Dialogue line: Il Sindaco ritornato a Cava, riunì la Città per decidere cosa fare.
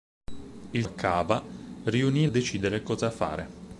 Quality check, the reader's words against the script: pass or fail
fail